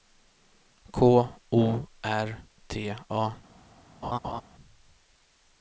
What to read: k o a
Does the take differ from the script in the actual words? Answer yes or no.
yes